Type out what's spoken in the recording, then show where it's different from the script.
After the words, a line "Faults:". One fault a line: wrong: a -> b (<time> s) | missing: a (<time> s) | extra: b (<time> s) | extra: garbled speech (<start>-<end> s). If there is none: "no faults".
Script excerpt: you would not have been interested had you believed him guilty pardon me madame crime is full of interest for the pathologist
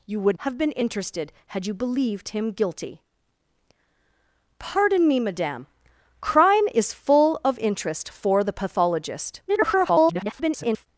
you would have been interested had you believed him guilty pardon me madame crime is full of interest for the pathologist [garbled]
Faults:
missing: not (0.4 s)
extra: garbled speech (9.5-10.9 s)